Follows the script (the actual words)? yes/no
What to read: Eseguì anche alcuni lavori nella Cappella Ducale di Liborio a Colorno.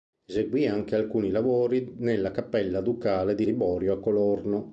yes